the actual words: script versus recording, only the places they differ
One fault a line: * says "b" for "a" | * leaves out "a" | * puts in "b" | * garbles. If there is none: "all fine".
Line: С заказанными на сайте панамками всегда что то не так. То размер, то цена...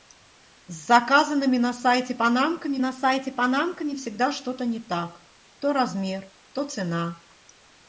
* puts in "на сайте панамками"